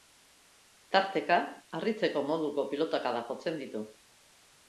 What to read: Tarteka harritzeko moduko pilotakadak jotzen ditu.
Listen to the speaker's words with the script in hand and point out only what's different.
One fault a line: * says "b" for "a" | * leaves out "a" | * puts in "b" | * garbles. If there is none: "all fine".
all fine